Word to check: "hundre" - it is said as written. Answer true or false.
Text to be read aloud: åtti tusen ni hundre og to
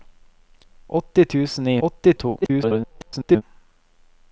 false